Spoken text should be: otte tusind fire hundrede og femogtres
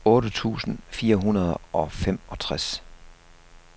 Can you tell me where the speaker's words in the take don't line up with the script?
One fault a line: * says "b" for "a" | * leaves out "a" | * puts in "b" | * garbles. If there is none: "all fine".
all fine